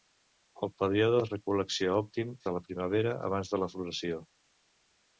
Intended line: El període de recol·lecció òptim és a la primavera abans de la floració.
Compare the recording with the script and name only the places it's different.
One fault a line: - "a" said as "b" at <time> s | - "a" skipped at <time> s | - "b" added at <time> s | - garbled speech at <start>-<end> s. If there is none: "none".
- "és" skipped at 2.3 s